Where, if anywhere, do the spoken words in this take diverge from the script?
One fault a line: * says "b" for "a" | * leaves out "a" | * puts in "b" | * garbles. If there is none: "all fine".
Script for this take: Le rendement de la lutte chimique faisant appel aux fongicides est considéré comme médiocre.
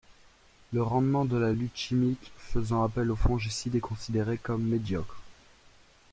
all fine